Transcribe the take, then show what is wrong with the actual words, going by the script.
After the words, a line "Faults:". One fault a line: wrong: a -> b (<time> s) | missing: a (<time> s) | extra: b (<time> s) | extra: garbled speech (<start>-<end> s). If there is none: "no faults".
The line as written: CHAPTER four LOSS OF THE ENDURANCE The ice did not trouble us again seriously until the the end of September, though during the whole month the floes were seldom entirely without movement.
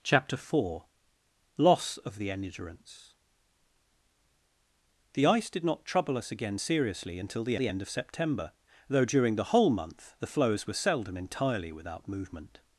CHAPTER four LOSS OF THE ENDURANCE The ice did not trouble us again seriously until the the end of September, though during the whole month the floes were seldom entirely without movement.
Faults:
no faults